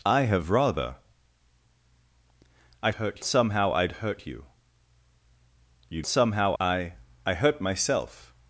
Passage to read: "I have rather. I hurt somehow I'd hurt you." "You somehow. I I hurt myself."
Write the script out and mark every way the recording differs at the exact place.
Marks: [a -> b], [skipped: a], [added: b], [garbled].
"I have rather. I hurt somehow I'd hurt you." "You somehow. I I hurt myself."